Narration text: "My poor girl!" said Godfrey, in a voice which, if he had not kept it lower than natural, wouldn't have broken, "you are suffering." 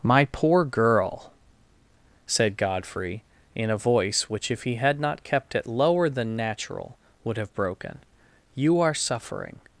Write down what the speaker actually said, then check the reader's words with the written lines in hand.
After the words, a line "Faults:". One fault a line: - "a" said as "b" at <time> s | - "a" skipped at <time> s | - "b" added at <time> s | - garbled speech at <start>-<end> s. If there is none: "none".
"My poor girl!" said Godfrey, in a voice which, if he had not kept it lower than natural, would have broken, "you are suffering."
Faults:
- "wouldn't" said as "would" at 7.2 s